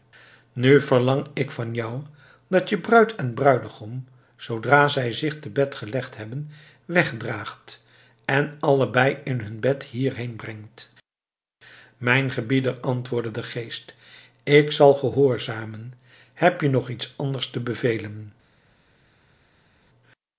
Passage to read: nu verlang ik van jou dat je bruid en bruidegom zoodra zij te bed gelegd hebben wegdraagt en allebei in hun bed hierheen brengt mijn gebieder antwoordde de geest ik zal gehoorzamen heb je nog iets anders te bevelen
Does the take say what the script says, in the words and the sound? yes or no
no